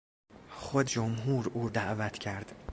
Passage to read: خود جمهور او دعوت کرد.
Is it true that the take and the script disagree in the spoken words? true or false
false